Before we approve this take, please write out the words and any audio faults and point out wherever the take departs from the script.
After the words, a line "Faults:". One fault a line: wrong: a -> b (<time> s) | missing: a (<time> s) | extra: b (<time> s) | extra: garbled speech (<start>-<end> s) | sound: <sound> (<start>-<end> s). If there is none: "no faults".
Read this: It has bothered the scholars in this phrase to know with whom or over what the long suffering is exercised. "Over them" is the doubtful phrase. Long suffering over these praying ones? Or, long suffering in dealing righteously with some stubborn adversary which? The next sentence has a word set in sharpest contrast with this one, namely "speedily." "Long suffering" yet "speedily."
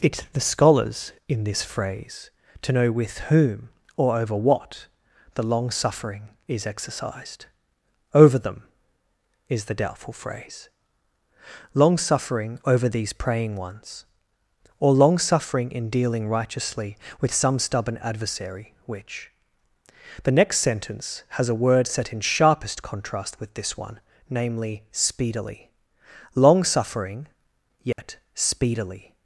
It the scholars in this phrase to know with whom or over what the long suffering is exercised. "Over them" is the doubtful phrase. Long suffering over these praying ones? Or, long suffering in dealing righteously with some stubborn adversary which? The next sentence has a word set in sharpest contrast with this one, namely "speedily." "Long suffering" yet "speedily."
Faults:
missing: has bothered (0.2 s)
sound: dropout (27.9-28.0 s)